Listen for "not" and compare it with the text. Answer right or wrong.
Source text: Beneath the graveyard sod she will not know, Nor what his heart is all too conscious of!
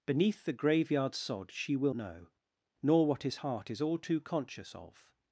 wrong